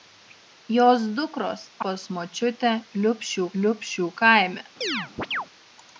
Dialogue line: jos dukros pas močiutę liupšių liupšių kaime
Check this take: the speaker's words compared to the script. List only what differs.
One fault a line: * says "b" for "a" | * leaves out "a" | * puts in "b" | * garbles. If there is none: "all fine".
all fine